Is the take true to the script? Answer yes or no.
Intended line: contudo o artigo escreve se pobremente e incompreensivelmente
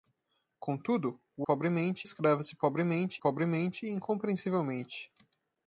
no